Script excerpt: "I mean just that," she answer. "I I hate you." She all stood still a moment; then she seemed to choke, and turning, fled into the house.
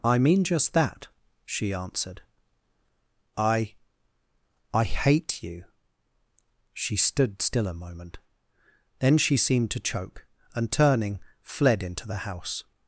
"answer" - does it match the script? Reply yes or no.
no